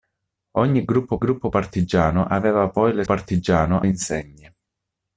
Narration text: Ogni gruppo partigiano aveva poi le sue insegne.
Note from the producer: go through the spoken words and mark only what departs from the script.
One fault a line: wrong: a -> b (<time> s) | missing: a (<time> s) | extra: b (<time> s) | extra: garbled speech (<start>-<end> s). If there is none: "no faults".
extra: gruppo (1.2 s)
wrong: sue -> partigiano (3.0 s)